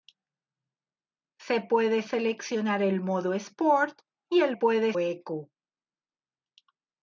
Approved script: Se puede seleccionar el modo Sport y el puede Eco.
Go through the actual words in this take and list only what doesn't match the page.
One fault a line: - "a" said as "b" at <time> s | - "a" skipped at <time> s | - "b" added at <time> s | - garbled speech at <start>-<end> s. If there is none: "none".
none